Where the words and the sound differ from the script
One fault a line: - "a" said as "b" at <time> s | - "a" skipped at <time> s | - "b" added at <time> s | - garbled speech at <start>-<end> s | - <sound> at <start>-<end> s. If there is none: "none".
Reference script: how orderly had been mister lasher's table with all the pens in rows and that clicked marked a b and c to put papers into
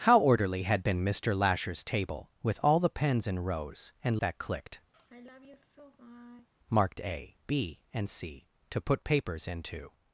- sigh at 4.9-6.5 s